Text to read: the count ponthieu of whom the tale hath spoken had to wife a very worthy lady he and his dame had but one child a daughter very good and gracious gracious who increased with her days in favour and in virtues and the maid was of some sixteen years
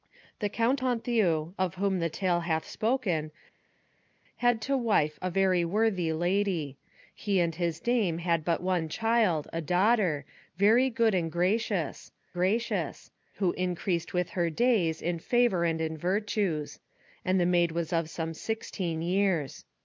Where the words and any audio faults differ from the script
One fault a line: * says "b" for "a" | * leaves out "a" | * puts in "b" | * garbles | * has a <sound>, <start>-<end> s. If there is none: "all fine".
all fine